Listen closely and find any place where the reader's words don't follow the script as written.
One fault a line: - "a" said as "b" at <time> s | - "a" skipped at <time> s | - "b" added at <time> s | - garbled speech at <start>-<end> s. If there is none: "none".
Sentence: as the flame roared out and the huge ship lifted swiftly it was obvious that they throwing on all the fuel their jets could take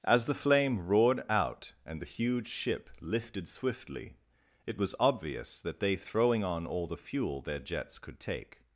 none